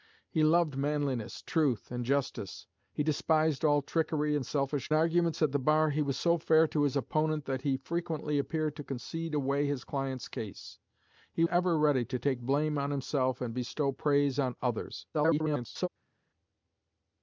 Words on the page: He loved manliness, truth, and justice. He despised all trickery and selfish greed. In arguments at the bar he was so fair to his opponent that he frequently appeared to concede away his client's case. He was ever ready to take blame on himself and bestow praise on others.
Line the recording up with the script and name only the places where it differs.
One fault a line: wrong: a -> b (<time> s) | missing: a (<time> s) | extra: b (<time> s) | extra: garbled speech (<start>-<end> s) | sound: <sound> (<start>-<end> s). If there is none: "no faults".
missing: greed In (4.9 s)
missing: was (11.5 s)
extra: garbled speech (15.1-15.9 s)